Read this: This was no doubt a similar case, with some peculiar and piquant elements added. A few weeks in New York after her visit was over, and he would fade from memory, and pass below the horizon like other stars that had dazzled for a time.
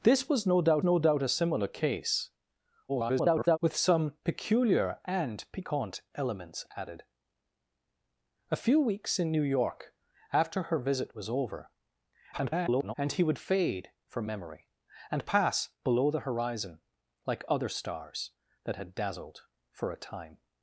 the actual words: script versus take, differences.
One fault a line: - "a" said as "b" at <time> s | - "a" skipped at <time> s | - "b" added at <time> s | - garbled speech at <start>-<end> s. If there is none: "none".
- "no doubt" added at 0.8 s
- garbled speech at 2.9-3.6 s
- garbled speech at 12.3-12.9 s